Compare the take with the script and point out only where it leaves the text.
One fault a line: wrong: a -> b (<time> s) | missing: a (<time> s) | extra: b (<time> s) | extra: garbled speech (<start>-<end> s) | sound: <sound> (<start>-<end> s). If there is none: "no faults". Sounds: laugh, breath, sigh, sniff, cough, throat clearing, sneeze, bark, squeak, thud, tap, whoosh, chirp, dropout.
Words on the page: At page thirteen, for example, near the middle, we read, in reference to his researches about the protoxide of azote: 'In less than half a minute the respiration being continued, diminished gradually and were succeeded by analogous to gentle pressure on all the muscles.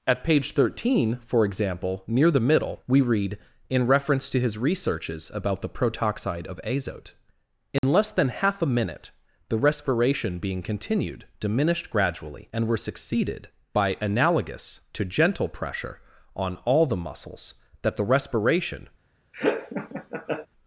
sound: dropout (7.8-7.8 s)
extra: That the respiration (17.8 s)
sound: laugh (19.3-20.5 s)